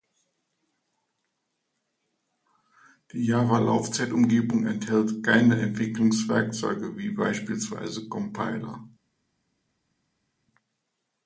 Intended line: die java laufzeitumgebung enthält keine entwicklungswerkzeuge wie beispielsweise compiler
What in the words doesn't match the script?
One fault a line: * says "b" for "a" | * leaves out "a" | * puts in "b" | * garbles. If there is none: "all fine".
all fine